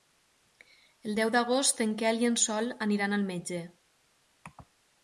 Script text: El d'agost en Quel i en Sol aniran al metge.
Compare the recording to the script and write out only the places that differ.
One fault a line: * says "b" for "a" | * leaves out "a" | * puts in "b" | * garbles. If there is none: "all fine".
* puts in "deu"